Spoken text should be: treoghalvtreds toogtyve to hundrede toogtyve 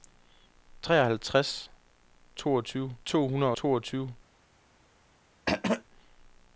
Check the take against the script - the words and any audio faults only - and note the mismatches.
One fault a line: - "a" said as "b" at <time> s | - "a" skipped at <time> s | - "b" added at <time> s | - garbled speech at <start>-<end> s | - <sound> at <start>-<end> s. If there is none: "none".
- throat clearing at 5.5-5.8 s